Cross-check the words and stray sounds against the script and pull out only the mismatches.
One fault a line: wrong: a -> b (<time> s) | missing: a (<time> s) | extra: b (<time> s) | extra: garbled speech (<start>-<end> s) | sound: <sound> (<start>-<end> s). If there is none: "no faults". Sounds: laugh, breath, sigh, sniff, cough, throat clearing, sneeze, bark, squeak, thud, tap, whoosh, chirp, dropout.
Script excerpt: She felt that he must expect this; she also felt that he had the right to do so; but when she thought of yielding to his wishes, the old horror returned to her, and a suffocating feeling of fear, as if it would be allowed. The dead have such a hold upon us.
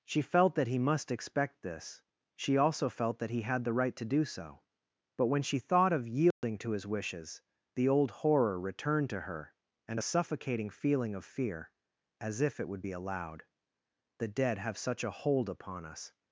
sound: dropout (6.3-6.4 s)